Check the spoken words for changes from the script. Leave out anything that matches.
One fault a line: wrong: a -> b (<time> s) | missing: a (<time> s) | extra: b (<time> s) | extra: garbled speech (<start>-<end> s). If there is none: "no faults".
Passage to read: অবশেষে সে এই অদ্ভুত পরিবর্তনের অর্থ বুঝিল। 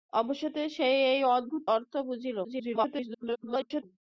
missing: পরিবর্তনের (1.6 s)
extra: garbled speech (2.4-3.8 s)